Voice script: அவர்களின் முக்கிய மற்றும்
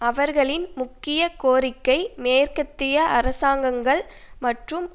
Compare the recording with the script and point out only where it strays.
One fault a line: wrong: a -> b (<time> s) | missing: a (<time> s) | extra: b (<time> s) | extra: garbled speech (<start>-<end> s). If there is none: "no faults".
extra: கோரிக்கை மேற்கத்திய அரசாங்கங்கள் (1.4 s)